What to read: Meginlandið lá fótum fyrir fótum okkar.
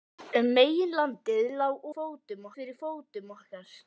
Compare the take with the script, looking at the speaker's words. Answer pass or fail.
pass